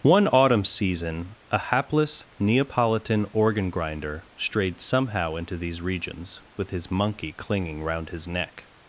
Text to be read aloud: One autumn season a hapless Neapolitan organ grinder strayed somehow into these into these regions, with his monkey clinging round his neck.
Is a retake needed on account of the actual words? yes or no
yes